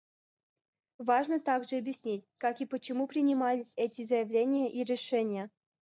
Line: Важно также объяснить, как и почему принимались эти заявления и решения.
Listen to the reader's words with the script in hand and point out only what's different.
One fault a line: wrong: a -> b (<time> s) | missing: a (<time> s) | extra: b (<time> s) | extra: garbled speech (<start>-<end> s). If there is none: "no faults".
no faults